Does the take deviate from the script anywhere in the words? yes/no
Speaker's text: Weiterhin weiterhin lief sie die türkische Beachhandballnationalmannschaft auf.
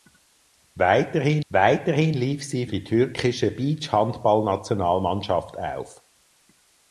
no